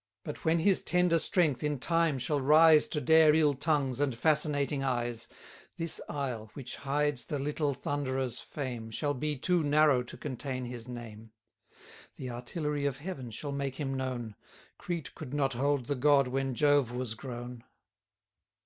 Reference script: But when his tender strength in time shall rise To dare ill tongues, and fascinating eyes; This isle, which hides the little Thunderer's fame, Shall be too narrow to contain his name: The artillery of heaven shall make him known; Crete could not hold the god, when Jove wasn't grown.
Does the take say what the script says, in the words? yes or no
no